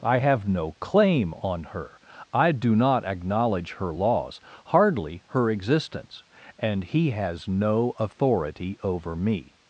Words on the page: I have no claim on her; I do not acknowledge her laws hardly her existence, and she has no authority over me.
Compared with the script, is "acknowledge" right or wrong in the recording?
right